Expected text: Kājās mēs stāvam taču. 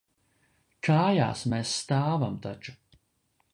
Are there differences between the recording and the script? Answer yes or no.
no